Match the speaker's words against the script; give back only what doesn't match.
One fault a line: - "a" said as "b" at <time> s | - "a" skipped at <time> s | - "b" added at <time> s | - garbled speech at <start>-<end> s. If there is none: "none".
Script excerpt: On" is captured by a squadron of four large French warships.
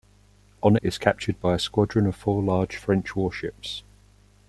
none